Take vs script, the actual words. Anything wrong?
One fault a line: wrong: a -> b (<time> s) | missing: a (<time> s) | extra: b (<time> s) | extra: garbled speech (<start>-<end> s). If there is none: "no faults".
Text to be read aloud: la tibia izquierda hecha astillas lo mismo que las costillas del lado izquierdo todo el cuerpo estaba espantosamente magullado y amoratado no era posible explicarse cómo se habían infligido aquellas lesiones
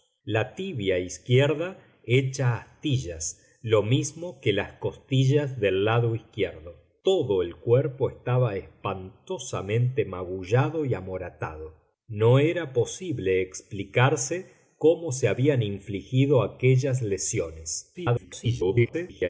extra: garbled speech (17.9-19.3 s)